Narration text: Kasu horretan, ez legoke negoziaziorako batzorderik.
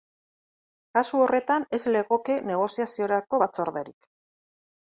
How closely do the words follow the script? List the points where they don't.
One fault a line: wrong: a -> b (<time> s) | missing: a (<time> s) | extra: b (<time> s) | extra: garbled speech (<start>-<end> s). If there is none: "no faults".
no faults